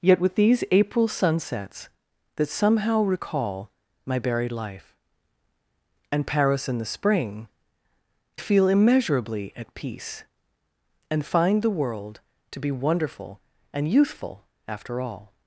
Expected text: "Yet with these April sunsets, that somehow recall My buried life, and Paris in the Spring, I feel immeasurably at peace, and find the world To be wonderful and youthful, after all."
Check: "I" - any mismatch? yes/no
yes